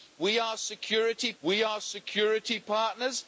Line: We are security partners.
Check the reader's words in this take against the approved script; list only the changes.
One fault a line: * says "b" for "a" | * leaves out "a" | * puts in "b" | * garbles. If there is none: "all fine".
* puts in "we are security"